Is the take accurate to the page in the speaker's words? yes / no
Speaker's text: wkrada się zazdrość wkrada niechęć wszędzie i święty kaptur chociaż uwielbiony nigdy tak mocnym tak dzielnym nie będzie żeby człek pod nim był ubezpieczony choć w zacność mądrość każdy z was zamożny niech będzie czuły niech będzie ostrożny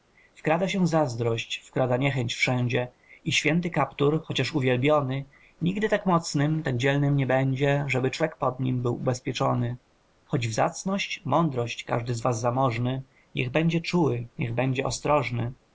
yes